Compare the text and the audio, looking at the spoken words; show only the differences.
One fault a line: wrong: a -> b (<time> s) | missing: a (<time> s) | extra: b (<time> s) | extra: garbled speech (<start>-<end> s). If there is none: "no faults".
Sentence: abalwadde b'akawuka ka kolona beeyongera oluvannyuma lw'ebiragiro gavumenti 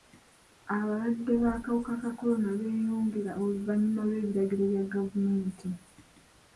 extra: bya (4.7 s)